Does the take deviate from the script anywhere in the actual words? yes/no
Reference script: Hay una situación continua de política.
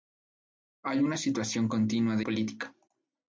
no